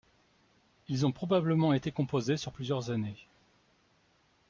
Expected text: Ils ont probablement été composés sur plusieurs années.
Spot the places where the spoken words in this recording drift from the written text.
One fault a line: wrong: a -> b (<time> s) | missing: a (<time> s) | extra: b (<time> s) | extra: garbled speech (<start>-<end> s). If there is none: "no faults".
no faults